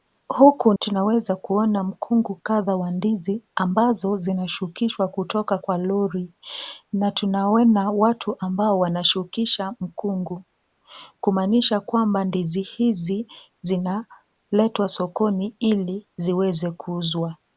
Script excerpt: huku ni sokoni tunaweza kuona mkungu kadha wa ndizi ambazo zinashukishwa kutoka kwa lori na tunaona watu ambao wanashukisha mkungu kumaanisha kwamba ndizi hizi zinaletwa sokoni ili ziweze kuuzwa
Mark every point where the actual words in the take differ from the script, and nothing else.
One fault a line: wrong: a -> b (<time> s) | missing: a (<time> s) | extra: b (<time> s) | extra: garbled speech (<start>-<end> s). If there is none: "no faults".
missing: ni sokoni (0.7 s)